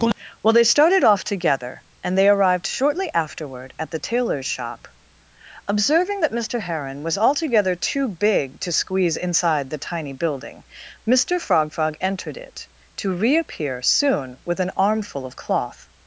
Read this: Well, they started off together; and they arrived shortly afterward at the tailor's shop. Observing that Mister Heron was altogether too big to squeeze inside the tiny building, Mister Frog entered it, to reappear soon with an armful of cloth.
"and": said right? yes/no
yes